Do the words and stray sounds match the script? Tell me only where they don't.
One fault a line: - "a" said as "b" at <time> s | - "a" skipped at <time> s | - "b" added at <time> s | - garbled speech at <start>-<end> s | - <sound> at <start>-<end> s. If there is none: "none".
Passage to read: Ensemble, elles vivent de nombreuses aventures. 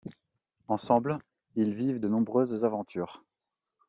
- "elles" said as "ils" at 1.6 s